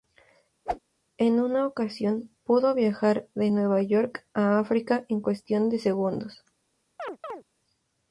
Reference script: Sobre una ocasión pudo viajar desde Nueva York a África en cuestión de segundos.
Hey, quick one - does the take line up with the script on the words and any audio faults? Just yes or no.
no